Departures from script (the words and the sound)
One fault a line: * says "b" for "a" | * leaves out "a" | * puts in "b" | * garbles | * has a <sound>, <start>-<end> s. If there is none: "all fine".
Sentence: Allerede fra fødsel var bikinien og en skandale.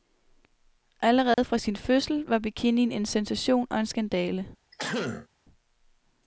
* has a dropout, 1.3-1.4 s
* puts in "sin"
* puts in "en sensation"
* has a throat clearing, 4.7-5.3 s